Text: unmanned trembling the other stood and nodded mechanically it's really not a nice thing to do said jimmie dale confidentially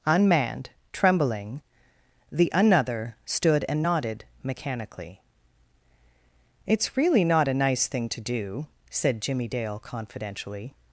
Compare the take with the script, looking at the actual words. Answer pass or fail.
fail